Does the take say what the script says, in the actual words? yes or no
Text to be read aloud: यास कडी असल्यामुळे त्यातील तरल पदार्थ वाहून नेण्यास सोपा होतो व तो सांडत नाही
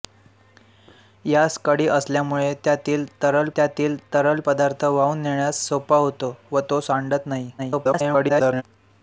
no